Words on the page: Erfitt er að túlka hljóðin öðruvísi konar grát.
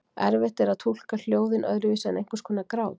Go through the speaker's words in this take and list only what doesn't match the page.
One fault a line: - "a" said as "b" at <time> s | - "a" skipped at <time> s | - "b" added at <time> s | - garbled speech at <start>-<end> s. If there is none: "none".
- "en einhvers" added at 2.1 s